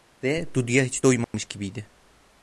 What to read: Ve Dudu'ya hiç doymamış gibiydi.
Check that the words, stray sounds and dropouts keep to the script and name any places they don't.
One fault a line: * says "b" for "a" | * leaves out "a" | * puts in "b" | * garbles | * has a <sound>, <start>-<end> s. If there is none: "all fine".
* has a dropout, 1.2-1.3 s